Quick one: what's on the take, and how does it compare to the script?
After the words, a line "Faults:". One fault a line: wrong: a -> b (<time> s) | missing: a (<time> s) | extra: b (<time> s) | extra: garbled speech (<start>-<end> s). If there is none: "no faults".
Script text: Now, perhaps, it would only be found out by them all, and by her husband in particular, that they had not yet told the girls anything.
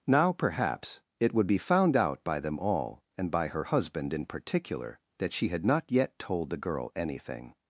Now, perhaps, it would be found out by them all, and by her husband in particular, that she had not yet told the girl anything.
Faults:
missing: only (1.5 s)
wrong: they -> she (5.3 s)
wrong: girls -> girl (6.6 s)